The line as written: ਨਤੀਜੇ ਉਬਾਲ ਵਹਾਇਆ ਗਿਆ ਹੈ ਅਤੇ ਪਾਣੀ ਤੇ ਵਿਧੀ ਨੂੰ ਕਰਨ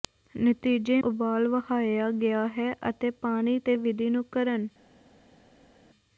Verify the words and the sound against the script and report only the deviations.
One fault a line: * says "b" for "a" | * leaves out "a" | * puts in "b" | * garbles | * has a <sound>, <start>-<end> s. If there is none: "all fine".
all fine